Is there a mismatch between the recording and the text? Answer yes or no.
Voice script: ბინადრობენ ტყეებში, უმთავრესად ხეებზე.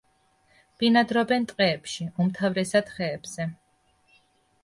no